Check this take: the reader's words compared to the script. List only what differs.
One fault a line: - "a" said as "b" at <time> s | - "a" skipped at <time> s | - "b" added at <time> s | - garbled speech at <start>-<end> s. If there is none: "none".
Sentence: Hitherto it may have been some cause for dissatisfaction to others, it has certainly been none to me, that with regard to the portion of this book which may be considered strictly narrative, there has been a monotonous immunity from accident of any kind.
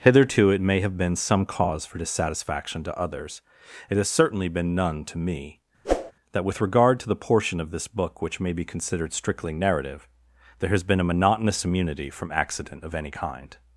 none